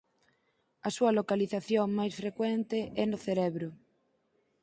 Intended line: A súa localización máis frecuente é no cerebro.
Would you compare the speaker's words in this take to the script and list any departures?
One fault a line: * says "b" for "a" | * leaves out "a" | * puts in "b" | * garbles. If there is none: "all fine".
all fine